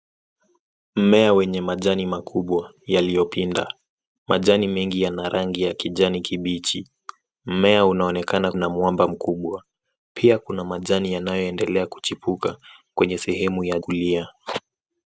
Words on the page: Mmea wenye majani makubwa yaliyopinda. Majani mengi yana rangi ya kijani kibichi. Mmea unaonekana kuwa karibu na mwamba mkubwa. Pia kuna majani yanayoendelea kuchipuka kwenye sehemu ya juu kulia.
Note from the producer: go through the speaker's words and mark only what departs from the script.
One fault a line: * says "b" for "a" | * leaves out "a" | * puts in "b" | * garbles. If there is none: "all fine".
* leaves out "kuwa karibu"
* leaves out "juu"